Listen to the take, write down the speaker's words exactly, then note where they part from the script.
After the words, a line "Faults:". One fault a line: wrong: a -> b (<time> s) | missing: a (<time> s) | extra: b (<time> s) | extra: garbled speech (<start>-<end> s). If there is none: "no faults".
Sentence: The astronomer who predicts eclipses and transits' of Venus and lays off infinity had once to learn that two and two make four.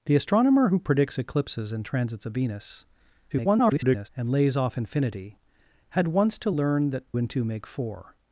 The astronomer who predicts eclipses and transits' of Venus [garbled] and lays off infinity had once to learn that and two make four.
Faults:
extra: garbled speech (3.3-4.1 s)
missing: two (7.0 s)